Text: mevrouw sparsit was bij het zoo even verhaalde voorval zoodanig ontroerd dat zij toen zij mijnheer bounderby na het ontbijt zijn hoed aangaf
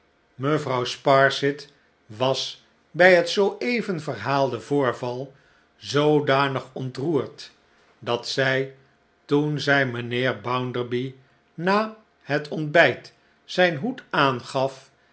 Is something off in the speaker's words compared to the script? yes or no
no